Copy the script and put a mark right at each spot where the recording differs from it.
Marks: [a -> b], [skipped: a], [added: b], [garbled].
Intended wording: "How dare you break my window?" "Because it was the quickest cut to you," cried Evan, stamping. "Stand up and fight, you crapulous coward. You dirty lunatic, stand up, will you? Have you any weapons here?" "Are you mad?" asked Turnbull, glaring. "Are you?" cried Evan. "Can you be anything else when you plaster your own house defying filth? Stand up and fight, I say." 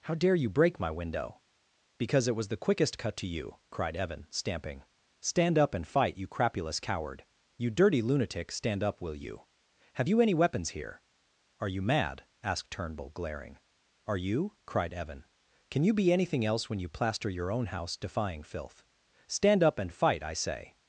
"How dare you break my window?" "Because it was the quickest cut to you," cried Evan, stamping. "Stand up and fight, you crapulous coward. You dirty lunatic, stand up, will you? Have you any weapons here?" "Are you mad?" asked Turnbull, glaring. "Are you?" cried Evan. "Can you be anything else when you plaster your own house defying filth? Stand up and fight, I say."